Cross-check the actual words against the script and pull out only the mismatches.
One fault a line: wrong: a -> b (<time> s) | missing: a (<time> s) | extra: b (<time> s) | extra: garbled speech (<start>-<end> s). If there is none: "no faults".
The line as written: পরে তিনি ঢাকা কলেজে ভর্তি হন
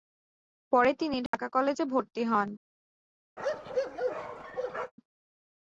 no faults